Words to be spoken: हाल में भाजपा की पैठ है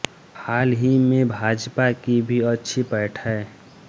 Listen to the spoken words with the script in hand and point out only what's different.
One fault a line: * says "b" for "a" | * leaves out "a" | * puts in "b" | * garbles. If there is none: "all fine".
* puts in "ही"
* puts in "भी अच्छी"